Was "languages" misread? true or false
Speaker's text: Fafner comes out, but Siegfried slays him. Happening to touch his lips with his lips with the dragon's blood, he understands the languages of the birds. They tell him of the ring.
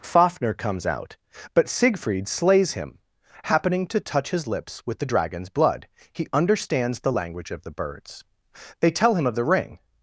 true